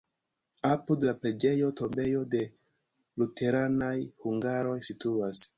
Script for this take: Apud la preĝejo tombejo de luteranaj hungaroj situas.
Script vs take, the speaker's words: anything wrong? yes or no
no